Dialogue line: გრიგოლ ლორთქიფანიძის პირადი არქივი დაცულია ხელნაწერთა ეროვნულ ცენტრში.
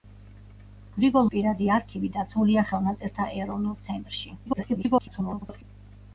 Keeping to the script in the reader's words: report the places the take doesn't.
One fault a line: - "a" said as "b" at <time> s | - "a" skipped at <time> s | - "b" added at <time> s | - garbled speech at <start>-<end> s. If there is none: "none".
- "ლორთქიფანიძის" skipped at 1.3 s
- garbled speech at 4.5-5.6 s